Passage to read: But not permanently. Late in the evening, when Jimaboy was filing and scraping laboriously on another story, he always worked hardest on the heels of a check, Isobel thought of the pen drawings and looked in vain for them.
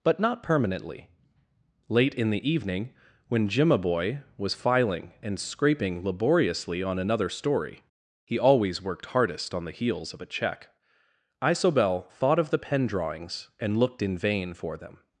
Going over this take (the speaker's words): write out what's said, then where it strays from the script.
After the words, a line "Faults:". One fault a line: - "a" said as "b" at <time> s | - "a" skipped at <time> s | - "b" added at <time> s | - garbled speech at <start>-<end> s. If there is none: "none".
But not permanently. Late in the evening, when Jimaboy was filing and scraping laboriously on another story, he always worked hardest on the heels of a check, Isobel thought of the pen drawings and looked in vain for them.
Faults:
none